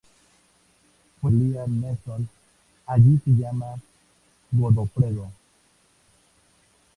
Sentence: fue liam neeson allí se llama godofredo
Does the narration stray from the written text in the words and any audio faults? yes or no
no